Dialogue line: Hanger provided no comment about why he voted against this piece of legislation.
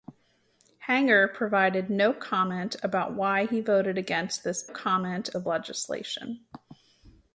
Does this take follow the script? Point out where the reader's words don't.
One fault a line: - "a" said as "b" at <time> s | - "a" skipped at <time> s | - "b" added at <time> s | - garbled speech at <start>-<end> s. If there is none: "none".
- "piece" said as "comment" at 4.6 s